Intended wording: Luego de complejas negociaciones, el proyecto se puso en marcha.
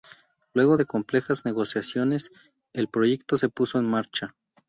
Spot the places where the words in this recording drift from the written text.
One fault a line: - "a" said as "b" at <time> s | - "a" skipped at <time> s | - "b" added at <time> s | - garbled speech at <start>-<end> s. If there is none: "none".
none